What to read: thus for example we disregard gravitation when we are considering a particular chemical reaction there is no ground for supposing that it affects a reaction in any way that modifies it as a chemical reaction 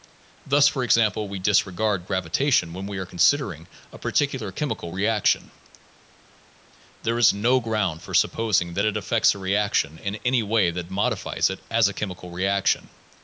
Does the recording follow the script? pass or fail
pass